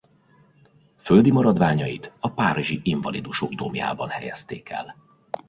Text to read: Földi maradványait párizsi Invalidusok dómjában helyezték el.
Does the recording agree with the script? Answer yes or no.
no